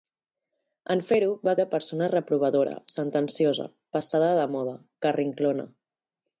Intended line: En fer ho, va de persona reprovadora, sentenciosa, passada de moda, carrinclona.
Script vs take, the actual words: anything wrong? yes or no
no